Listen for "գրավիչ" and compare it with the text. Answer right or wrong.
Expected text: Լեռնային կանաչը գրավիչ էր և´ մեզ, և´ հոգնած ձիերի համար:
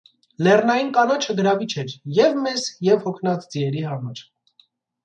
right